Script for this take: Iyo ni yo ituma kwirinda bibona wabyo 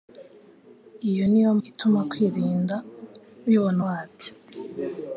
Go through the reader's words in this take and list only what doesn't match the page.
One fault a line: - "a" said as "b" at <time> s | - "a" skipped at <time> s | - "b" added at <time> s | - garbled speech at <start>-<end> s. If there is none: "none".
none